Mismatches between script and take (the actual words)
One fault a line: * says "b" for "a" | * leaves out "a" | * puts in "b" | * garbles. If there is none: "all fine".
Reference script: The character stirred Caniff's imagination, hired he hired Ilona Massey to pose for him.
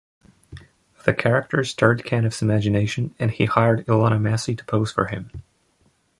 * says "and" for "hired"